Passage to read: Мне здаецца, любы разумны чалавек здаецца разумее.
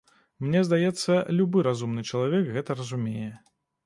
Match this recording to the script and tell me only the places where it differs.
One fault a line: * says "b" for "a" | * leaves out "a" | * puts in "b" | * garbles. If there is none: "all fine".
* says "гэта" for "здаецца"